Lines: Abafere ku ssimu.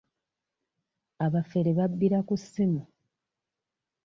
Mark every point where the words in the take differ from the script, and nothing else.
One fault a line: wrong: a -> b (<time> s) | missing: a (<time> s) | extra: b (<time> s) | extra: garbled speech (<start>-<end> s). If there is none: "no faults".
extra: babbira (1.8 s)